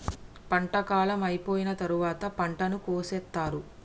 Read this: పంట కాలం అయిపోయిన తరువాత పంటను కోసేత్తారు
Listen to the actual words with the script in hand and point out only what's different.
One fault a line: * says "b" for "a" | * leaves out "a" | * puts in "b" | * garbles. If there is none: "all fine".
all fine